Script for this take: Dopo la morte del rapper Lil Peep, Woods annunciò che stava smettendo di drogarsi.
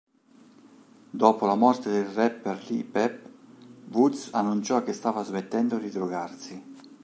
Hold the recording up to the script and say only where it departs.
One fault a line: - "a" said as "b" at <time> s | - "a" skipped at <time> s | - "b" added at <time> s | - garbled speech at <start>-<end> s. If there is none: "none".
none